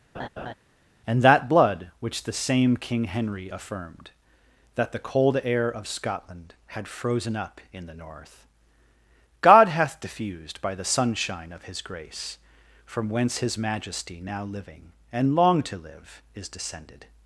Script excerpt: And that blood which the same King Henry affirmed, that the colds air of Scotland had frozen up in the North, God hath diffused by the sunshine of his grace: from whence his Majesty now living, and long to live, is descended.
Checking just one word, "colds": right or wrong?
wrong